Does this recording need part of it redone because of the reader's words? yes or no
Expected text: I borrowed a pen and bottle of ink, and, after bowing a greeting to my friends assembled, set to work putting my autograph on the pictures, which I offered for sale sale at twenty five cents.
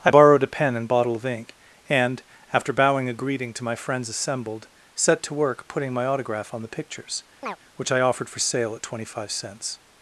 yes